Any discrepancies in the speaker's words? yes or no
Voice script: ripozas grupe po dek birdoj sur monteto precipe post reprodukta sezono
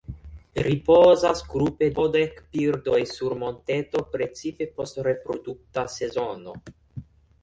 no